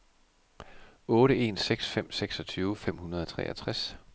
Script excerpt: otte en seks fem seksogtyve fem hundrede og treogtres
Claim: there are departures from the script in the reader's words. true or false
false